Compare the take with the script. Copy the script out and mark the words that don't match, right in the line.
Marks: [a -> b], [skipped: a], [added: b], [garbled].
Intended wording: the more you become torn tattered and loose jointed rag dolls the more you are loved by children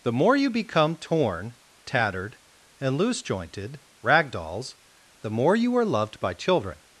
the more you become torn tattered and loose jointed rag dolls the more you are loved by children